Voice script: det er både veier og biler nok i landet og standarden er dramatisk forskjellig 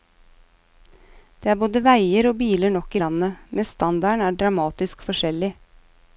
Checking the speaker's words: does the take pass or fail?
fail